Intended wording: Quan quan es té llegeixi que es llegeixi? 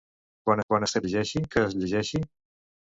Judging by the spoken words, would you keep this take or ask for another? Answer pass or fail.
pass